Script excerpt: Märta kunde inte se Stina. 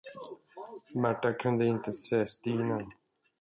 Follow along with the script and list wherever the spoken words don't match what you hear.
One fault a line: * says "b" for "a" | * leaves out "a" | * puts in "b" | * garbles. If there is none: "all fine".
all fine